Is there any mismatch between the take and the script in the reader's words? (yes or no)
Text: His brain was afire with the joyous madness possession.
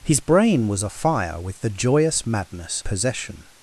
no